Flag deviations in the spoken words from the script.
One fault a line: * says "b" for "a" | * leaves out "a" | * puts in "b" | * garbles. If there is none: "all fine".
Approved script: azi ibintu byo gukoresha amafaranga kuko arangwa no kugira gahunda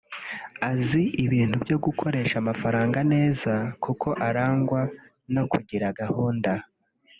* puts in "neza"